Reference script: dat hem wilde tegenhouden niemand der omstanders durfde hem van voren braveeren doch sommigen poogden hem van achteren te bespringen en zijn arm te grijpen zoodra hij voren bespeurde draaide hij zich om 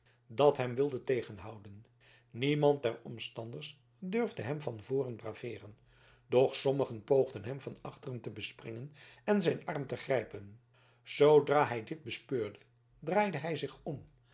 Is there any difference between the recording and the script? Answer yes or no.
yes